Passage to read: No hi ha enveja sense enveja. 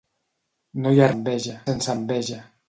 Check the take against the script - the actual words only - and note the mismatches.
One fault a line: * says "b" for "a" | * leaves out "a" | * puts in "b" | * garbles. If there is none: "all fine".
all fine